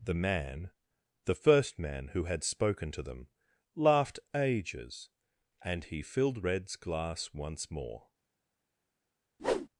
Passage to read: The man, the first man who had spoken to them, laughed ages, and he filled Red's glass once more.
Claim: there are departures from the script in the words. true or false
false